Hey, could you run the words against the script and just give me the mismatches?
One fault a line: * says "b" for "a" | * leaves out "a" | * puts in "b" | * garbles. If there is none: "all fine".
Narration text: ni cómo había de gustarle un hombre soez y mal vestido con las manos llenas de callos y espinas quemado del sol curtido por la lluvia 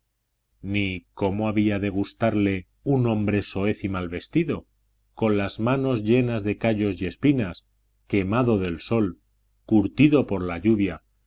all fine